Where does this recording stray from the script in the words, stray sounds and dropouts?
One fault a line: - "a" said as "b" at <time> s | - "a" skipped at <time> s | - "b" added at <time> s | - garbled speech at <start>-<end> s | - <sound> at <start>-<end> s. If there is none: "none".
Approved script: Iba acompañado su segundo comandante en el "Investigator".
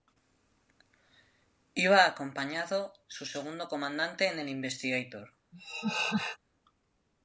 - laugh at 5.5-6.4 s